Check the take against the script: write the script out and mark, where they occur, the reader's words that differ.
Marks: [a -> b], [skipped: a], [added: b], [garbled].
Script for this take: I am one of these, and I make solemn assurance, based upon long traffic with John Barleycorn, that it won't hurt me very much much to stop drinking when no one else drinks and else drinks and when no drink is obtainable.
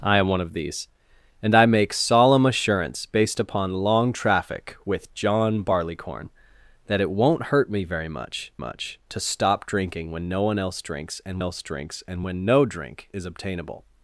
I am one of these, and I make solemn assurance, based upon long traffic with John Barleycorn, that it won't hurt me very much much to stop drinking when no one else drinks and else drinks and when no drink is obtainable.